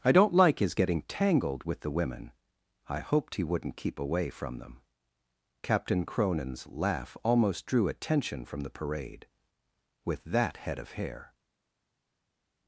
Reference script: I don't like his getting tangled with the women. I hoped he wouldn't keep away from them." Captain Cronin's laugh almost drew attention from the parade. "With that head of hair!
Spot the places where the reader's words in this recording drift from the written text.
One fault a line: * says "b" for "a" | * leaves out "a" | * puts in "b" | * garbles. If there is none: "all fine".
all fine